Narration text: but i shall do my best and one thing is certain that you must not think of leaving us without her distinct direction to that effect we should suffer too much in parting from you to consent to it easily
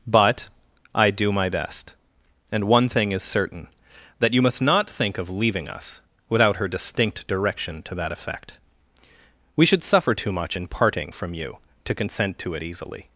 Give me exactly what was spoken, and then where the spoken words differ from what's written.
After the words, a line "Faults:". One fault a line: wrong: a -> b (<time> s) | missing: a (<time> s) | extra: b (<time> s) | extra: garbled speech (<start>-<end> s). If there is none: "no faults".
but i do my best and one thing is certain that you must not think of leaving us without her distinct direction to that effect we should suffer too much in parting from you to consent to it easily
Faults:
missing: shall (1.1 s)